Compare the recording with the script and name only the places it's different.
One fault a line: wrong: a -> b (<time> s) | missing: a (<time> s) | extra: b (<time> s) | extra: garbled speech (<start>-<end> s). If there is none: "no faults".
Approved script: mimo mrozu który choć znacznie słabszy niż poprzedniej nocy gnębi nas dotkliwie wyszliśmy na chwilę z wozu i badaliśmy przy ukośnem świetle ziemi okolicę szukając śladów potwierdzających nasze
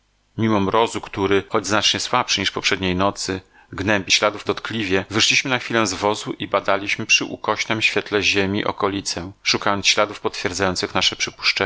wrong: nas -> śladów (4.1 s)